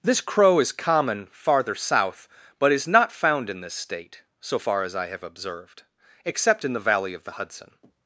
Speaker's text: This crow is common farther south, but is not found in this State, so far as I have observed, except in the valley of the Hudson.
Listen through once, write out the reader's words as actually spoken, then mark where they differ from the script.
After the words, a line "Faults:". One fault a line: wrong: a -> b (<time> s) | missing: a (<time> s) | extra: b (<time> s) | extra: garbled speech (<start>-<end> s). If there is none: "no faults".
This crow is common farther south, but is not found in this State, so far as I have observed, except in the valley of the Hudson.
Faults:
no faults